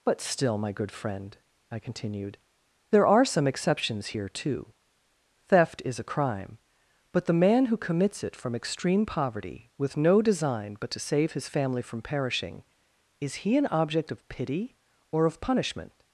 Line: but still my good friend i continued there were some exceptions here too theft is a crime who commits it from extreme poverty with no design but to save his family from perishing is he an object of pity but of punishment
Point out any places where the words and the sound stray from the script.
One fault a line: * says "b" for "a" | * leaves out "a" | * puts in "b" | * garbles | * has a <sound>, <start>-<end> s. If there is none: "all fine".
* says "are" for "were"
* puts in "but the man"
* says "or" for "but"